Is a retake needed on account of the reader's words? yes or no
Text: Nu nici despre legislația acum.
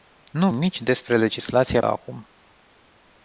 no